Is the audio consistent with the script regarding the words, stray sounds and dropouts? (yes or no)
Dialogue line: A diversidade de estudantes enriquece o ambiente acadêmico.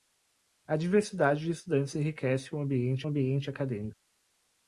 no